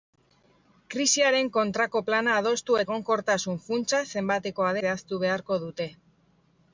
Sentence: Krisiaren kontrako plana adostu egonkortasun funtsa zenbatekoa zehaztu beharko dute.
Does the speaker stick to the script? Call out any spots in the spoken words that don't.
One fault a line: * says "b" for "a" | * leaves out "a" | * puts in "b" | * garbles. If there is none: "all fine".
all fine